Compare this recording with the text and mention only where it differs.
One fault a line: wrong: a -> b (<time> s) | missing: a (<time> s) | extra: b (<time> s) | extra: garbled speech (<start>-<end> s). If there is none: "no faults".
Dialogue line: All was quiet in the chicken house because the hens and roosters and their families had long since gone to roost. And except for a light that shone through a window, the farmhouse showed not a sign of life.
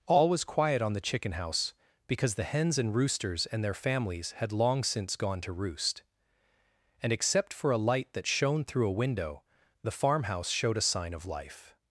wrong: in -> on (0.8 s)
missing: not (10.8 s)